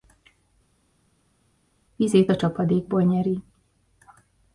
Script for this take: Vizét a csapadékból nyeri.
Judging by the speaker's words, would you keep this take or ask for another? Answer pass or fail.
pass